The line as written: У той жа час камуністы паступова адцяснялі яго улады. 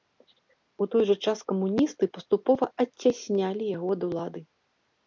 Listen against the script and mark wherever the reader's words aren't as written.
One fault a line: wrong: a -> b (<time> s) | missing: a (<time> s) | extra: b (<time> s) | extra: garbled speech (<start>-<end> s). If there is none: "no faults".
extra: ад (4.0 s)